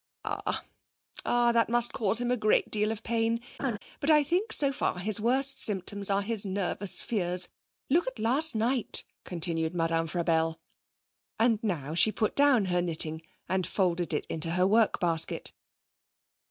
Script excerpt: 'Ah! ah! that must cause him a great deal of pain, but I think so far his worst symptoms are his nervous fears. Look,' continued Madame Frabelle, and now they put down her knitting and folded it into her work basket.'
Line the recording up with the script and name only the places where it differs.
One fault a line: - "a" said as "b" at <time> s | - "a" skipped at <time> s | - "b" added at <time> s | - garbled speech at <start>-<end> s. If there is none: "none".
- "at last night" added at 8.1 s
- "they" said as "she" at 11.9 s